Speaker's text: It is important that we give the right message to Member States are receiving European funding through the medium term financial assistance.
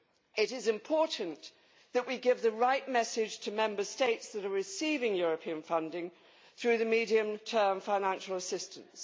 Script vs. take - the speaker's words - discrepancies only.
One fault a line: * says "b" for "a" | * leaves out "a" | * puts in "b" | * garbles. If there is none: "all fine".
* puts in "that"